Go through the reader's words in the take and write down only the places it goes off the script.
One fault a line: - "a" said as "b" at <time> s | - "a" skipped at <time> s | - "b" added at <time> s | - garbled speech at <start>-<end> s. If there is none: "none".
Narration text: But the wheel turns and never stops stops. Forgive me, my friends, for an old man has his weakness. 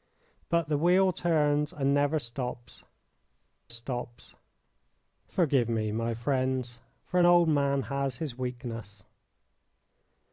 none